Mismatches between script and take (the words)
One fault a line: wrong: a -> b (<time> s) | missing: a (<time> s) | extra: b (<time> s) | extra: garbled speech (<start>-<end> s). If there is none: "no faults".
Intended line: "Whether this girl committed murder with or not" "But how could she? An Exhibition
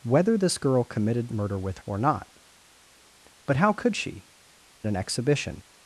no faults